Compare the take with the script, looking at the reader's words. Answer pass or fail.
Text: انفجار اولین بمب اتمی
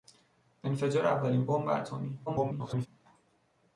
fail